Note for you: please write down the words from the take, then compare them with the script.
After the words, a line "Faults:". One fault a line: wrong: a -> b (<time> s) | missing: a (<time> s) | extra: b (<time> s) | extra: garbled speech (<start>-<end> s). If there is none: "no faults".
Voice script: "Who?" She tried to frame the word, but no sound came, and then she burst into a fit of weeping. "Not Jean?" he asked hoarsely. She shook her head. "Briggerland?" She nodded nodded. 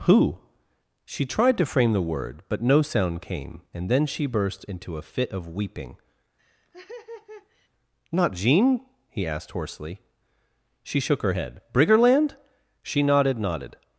"Who?" She tried to frame the word, but no sound came, and then she burst into a fit of weeping. "Not Jean?" he asked hoarsely. She shook her head. "Briggerland?" She nodded nodded.
Faults:
no faults